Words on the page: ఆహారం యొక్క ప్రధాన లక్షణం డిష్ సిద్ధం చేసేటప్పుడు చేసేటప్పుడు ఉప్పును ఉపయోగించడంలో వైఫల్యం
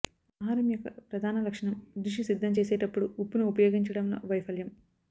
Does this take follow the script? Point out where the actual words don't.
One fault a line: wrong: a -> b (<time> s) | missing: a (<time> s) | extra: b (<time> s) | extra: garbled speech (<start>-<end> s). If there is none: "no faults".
missing: చేసేటప్పుడు (3.1 s)